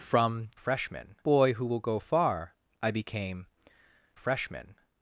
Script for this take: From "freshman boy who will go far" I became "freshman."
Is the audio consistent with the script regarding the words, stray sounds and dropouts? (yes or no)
yes